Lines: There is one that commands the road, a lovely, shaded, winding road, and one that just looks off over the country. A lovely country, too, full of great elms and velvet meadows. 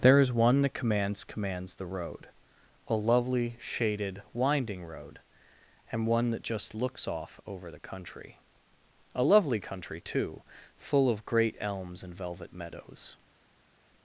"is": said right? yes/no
yes